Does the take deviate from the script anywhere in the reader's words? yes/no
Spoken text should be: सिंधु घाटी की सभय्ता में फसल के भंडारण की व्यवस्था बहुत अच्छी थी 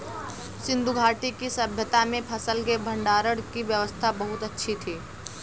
no